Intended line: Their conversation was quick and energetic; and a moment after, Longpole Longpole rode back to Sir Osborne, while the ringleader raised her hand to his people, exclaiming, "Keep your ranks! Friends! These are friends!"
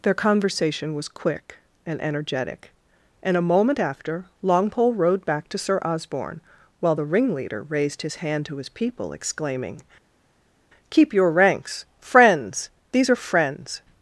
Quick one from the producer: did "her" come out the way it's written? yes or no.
no